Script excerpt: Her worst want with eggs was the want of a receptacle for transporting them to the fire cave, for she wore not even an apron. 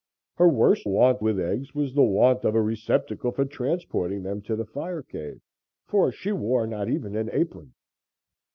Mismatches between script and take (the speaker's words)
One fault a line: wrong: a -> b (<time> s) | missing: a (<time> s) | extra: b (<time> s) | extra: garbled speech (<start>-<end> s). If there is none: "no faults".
no faults